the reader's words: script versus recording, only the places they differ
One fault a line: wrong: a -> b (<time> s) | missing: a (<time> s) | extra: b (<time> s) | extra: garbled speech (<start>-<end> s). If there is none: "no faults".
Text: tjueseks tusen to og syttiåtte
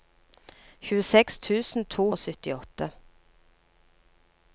no faults